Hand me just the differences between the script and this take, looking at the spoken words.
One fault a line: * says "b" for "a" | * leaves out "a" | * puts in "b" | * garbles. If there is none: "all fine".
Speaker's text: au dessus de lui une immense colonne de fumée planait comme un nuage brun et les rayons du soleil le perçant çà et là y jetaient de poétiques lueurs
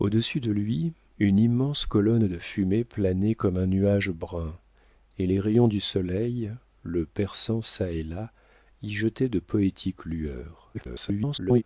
* garbles